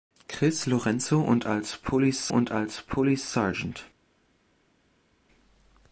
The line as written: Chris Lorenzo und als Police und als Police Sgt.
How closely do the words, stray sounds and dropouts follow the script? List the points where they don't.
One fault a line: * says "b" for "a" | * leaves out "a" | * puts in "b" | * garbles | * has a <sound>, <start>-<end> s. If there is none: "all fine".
all fine